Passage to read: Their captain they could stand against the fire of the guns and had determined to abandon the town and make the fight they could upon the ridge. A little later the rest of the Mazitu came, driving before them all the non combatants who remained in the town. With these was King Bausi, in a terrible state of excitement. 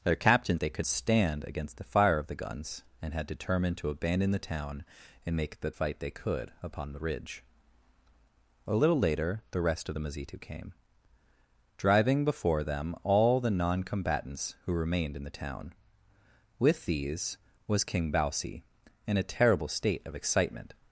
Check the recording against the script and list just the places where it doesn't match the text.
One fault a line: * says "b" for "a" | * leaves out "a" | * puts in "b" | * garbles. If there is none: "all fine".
all fine